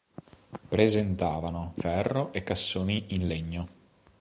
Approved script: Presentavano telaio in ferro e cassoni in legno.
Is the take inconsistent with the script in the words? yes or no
yes